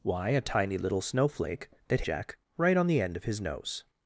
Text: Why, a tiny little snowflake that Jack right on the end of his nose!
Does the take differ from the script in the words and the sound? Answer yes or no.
no